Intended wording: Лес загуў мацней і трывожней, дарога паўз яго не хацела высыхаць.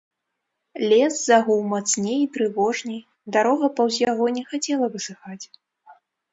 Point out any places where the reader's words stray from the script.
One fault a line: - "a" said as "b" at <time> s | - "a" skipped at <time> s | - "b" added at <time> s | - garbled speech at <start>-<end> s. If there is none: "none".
none